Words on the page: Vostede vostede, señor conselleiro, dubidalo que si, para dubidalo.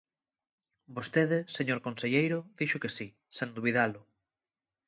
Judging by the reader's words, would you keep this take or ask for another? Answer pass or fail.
fail